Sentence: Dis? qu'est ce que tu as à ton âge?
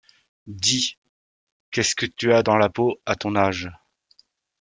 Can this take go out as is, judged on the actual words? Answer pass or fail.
fail